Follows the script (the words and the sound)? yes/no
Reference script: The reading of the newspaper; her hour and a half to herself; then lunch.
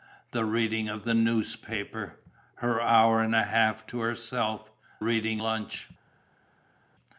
no